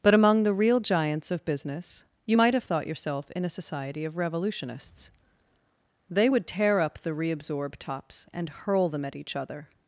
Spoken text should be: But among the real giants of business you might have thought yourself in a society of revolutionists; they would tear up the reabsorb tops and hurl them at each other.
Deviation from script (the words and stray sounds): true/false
false